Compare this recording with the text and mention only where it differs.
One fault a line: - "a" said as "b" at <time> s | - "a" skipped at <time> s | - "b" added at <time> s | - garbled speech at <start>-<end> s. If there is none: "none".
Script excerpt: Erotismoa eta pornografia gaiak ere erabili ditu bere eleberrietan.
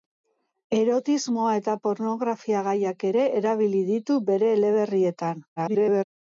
- garbled speech at 5.6-6.0 s